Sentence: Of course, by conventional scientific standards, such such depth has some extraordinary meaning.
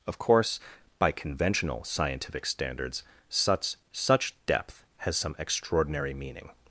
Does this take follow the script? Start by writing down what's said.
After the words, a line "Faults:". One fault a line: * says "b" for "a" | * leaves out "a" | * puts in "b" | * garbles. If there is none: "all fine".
Of course, by conventional scientific standards, such such depth has some extraordinary meaning.
Faults:
all fine